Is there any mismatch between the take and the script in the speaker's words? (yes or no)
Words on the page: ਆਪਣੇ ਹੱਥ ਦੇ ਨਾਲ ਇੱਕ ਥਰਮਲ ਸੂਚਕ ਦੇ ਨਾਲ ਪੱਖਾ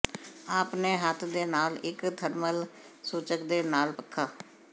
no